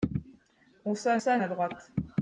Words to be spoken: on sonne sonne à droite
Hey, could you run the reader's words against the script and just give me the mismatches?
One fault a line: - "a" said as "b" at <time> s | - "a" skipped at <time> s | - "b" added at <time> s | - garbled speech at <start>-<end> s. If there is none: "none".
none